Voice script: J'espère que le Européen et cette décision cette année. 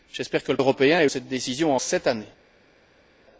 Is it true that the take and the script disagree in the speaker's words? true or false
false